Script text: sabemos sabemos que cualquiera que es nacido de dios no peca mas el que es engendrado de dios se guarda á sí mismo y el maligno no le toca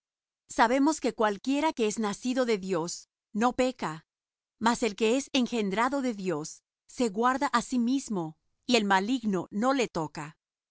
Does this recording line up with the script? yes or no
no